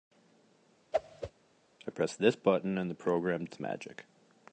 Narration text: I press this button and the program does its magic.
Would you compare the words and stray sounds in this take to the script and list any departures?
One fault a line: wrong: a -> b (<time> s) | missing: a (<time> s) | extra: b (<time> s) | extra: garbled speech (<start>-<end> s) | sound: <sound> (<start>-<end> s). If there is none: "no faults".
sound: whoosh (0.9-1.3 s)
missing: does (3.4 s)